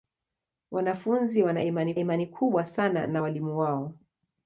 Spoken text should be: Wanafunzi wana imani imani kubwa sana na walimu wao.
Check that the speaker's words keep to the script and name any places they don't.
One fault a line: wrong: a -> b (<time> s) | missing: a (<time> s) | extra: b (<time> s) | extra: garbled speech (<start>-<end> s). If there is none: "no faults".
no faults